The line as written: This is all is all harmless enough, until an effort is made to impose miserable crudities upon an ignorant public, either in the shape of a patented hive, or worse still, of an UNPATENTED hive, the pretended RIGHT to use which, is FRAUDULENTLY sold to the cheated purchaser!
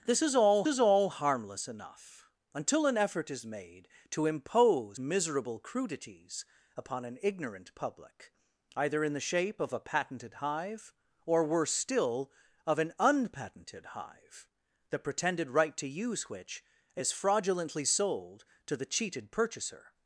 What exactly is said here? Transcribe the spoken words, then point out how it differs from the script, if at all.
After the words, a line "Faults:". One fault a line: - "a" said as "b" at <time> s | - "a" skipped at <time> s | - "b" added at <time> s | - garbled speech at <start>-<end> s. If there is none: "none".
This is all is all harmless enough, until an effort is made to impose miserable crudities upon an ignorant public, either in the shape of a patented hive, or worse still, of an UNPATENTED hive, the pretended RIGHT to use which, is FRAUDULENTLY sold to the cheated purchaser!
Faults:
none